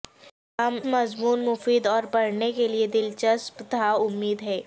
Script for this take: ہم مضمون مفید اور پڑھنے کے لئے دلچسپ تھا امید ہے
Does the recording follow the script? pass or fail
pass